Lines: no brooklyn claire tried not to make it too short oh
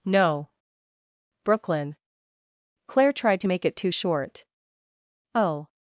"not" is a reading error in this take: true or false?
true